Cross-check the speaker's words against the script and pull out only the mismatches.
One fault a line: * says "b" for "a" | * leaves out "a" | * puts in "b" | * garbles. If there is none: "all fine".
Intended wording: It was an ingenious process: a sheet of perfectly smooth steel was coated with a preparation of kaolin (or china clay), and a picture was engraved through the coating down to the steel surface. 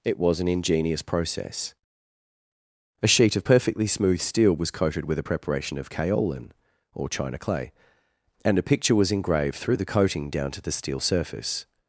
all fine